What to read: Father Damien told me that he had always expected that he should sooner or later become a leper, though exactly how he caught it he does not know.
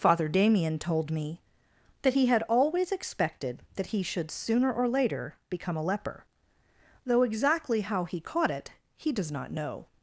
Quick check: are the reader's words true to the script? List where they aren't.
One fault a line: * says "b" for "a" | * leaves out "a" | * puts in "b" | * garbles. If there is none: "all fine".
all fine